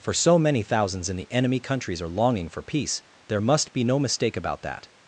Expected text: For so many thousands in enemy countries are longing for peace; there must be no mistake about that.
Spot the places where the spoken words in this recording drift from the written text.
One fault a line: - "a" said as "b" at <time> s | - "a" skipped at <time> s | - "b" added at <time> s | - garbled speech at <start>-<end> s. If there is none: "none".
- "the" added at 1.1 s